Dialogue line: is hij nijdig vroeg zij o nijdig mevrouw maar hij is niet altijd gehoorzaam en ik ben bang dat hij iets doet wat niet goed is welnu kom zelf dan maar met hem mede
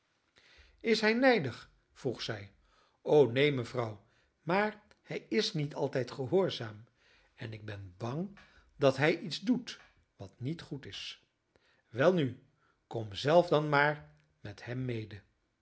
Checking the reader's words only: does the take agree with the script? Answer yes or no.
no